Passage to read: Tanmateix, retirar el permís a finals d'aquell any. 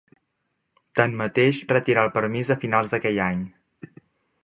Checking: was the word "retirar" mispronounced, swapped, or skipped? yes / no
no